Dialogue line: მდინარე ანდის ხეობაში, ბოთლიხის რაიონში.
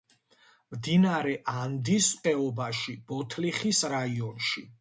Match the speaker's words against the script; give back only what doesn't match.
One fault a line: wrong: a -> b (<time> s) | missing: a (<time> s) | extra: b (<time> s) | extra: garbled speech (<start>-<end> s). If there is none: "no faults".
no faults